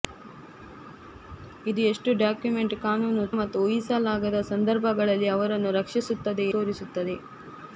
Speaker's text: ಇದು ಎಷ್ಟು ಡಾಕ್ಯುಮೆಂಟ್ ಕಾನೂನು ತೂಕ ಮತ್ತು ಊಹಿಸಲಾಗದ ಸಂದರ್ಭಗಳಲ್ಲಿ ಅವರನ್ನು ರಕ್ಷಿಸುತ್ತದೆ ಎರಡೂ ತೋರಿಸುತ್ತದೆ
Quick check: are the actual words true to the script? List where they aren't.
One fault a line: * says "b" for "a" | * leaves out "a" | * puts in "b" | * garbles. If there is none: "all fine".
* leaves out "ತೂಕ"
* leaves out "ಎರಡೂ"